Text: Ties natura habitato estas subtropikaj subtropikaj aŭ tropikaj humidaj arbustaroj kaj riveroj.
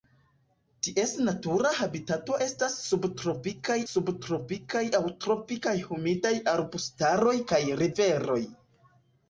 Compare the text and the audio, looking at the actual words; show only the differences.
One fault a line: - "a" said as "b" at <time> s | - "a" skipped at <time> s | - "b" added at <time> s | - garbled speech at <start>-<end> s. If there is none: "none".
none